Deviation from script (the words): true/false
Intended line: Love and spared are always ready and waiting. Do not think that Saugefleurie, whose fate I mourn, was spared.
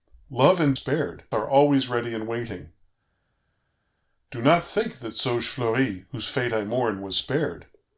false